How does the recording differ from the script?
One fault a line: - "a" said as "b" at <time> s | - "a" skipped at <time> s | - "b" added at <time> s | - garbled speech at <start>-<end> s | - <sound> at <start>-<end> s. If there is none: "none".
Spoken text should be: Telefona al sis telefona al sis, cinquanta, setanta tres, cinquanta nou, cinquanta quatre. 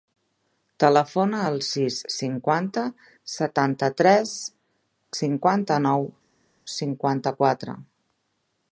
- "telefona al sis" skipped at 2.0 s